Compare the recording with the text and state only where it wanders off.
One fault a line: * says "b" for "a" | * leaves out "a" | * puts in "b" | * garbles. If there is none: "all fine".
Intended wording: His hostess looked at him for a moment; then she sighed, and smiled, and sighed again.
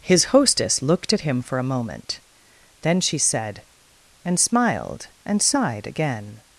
* says "said" for "sighed"